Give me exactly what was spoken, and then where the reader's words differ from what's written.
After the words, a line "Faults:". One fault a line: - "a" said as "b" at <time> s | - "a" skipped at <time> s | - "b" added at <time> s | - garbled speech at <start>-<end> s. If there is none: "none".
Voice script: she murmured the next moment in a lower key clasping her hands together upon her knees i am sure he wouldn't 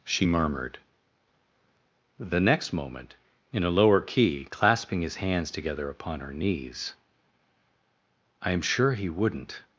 she murmured the next moment in a lower key clasping his hands together upon her knees i am sure he wouldn't
Faults:
- "her" said as "his" at 5.0 s